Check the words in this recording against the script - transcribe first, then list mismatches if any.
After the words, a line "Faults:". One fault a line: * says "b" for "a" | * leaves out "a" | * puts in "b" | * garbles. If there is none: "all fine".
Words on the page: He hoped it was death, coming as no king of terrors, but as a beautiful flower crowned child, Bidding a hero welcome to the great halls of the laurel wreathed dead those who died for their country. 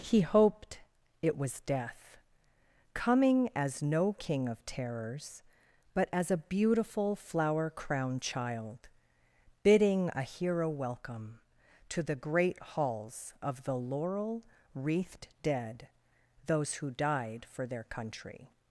He hoped it was death, coming as no king of terrors, but as a beautiful flower crowned child, Bidding a hero welcome to the great halls of the laurel wreathed dead those who died for their country.
Faults:
all fine